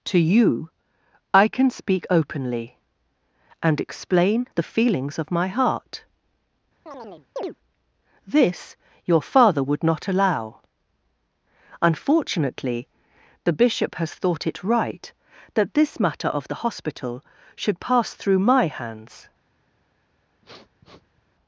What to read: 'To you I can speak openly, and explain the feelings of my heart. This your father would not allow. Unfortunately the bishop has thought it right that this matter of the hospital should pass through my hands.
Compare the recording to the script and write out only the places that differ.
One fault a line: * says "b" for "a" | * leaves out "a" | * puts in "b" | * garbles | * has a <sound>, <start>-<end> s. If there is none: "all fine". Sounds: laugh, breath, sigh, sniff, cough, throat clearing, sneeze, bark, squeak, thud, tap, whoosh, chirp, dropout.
* has a chirp, 6.9-7.6 s
* has a sniff, 20.4-21.2 s